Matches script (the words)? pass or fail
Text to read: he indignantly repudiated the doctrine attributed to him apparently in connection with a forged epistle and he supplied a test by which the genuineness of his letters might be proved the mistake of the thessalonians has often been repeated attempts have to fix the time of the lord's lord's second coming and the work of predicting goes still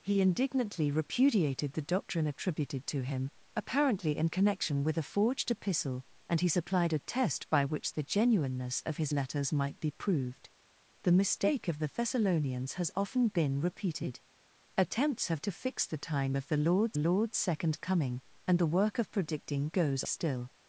pass